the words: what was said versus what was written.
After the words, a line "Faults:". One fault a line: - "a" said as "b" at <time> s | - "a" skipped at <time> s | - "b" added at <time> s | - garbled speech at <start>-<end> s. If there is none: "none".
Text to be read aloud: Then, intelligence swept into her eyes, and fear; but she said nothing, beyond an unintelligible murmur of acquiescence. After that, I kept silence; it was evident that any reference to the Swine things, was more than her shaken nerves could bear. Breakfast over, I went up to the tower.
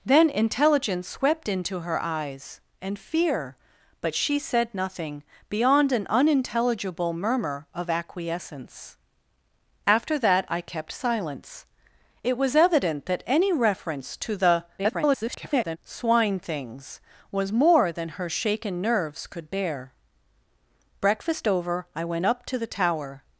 Then, intelligence swept into her eyes, and fear; but she said nothing, beyond an unintelligible murmur of acquiescence. After that, I kept silence; it was evident that any reference to the [garbled] Swine things, was more than her shaken nerves could bear. Breakfast over, I went up to the tower.
Faults:
- garbled speech at 14.8-15.8 s